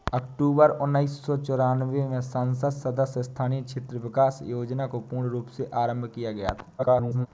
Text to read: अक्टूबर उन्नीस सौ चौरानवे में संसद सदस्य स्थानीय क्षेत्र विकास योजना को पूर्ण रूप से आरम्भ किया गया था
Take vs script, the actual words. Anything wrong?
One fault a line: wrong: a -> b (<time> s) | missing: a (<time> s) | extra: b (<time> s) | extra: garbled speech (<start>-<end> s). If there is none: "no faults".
extra: garbled speech (6.8-7.3 s)